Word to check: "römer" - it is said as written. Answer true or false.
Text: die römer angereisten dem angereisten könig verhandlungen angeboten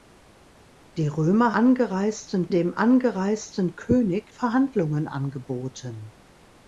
true